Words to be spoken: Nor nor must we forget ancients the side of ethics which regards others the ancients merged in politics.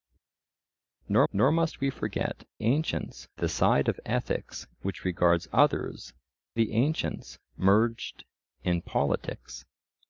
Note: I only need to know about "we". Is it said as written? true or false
true